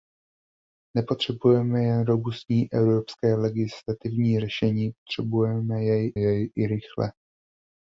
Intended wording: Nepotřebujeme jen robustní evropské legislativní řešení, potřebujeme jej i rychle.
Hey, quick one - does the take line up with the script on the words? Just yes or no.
no